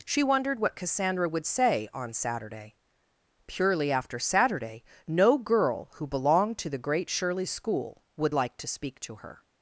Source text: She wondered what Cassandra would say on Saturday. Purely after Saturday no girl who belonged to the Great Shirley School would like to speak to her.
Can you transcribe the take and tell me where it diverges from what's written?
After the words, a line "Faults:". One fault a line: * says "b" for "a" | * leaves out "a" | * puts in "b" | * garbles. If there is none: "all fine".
She wondered what Cassandra would say on Saturday. Purely after Saturday no girl who belonged to the Great Shirley School would like to speak to her.
Faults:
all fine